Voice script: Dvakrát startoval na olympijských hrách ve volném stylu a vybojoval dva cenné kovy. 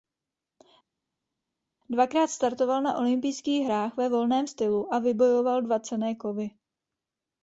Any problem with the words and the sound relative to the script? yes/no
no